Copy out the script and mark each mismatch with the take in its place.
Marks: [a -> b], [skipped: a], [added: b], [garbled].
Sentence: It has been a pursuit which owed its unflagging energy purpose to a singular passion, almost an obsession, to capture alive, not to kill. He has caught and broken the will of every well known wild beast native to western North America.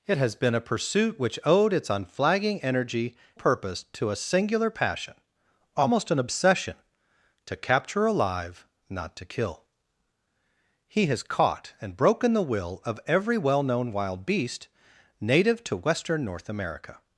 It has been a pursuit which owed its unflagging energy purpose to a singular passion, almost an obsession, to capture alive, not to kill. He has caught and broken the will of every well known wild beast native to western North America.